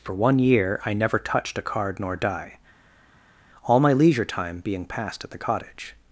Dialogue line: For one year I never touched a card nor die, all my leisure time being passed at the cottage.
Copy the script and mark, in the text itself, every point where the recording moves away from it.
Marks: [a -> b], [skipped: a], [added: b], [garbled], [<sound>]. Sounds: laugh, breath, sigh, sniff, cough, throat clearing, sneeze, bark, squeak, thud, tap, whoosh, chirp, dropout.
For one year I never touched a card nor die, all my leisure time being passed at the cottage.